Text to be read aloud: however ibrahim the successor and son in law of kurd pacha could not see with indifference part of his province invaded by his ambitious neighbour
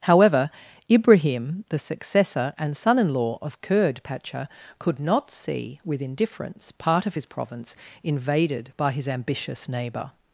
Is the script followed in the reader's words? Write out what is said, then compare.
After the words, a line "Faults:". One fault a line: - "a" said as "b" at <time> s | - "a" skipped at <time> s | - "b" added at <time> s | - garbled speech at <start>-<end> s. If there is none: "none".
however ibrahim the successor and son in law of kurd pacha could not see with indifference part of his province invaded by his ambitious neighbour
Faults:
none